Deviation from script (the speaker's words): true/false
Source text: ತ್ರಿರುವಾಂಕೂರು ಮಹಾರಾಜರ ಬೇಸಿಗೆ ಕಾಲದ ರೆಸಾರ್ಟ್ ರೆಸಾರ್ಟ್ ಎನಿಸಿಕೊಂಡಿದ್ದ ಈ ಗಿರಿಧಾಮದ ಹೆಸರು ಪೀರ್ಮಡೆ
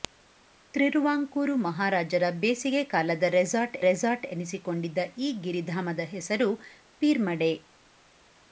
false